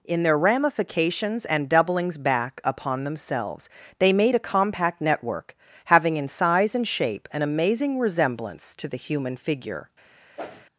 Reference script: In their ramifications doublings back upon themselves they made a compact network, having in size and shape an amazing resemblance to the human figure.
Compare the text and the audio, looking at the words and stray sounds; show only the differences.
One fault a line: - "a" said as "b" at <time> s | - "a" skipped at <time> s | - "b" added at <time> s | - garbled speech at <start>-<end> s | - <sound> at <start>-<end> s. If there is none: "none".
- "and" added at 1.4 s
- whoosh at 10.4-10.6 s